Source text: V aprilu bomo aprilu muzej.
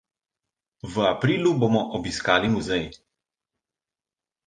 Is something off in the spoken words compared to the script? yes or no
yes